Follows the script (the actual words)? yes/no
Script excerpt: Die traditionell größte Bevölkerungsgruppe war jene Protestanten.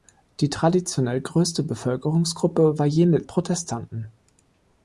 yes